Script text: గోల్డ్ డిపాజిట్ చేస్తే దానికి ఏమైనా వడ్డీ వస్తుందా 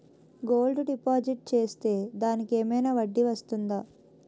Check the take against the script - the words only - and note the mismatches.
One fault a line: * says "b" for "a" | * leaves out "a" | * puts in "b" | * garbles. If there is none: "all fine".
all fine